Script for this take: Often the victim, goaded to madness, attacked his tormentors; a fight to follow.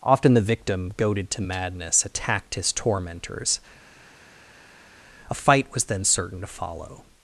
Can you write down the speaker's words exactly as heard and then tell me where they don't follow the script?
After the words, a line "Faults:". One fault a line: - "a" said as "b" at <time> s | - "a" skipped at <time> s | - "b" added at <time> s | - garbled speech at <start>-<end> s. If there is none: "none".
Often the victim, goaded to madness, attacked his tormentors; a fight was then certain to follow.
Faults:
- "was then certain" added at 5.7 s